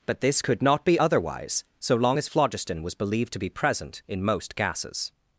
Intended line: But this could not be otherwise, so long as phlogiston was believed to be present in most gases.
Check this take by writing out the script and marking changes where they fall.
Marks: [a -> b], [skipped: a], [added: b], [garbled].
But this could not be otherwise, so long as phlogiston was believed to be present in most gases.